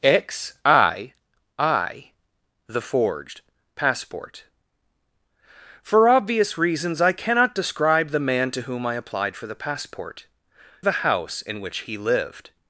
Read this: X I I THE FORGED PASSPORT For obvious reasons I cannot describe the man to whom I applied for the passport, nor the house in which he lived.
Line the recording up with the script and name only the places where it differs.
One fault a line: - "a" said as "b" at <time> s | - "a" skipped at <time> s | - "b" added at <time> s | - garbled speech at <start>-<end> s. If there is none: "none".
- "nor" skipped at 10.2 s